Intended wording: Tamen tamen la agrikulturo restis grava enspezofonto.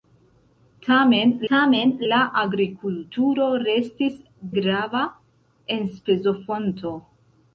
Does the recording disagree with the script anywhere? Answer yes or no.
no